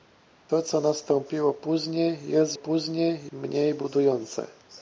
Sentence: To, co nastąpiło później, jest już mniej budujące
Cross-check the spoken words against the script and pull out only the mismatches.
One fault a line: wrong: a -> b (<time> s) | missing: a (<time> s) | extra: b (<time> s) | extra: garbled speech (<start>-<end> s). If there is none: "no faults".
wrong: już -> później (2.5 s)